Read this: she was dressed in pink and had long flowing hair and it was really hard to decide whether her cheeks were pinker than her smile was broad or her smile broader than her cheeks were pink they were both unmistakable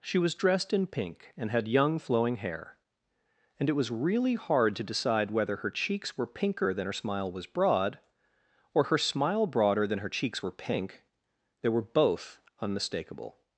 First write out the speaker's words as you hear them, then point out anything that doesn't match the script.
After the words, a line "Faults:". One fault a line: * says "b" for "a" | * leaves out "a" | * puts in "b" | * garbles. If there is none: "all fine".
she was dressed in pink and had young flowing hair and it was really hard to decide whether her cheeks were pinker than her smile was broad or her smile broader than her cheeks were pink they were both unmistakable
Faults:
* says "young" for "long"